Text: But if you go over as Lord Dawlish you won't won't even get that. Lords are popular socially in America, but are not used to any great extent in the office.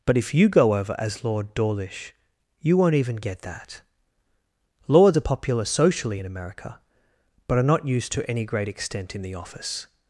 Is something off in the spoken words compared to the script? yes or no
yes